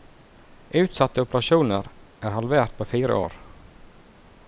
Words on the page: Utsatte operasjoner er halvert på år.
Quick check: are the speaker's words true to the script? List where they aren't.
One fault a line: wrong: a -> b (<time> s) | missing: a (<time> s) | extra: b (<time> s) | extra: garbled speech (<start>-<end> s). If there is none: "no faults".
extra: fire (2.9 s)